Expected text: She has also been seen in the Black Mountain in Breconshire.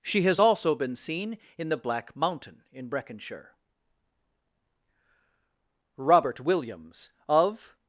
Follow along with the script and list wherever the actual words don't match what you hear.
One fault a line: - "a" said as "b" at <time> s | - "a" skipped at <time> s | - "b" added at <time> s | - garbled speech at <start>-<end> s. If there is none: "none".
- "Robert Williams of" added at 6.0 s